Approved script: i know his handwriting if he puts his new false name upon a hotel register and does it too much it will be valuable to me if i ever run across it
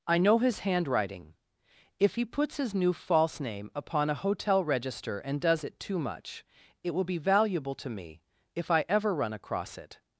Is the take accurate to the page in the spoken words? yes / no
yes